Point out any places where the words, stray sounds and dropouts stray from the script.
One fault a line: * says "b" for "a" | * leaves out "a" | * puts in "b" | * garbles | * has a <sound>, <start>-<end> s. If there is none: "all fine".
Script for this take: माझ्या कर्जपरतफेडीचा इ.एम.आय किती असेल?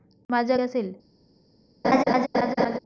* leaves out "कर्जपरतफेडीचा इ.एम.आय किती"
* has a laugh, 1.8-2.8 s